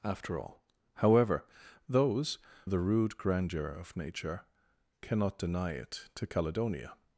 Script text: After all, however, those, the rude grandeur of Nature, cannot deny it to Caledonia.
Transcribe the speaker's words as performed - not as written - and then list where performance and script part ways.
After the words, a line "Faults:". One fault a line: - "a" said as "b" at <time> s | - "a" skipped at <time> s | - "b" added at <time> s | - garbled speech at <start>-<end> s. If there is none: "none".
After all, however, those, the rude grandeur of Nature, cannot deny it to Caledonia.
Faults:
none